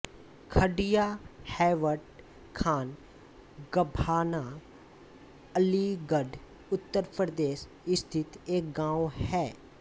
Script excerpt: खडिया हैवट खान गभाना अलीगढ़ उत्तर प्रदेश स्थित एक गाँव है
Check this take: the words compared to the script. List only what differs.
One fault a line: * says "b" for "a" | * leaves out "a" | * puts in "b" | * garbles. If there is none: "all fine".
all fine